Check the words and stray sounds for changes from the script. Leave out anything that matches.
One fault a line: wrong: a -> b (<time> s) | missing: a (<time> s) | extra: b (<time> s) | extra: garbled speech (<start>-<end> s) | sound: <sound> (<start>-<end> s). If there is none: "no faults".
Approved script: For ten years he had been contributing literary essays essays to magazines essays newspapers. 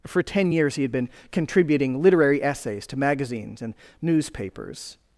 missing: essays (2.9 s)
wrong: essays -> and (3.6 s)